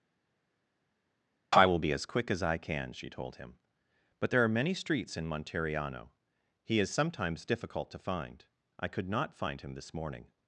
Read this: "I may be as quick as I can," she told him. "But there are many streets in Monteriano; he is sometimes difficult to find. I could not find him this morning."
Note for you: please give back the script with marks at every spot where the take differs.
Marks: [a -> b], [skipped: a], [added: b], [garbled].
"I [may -> will] be as quick as I can," she told him. "But there are many streets in Monteriano; he is sometimes difficult to find. I could not find him this morning."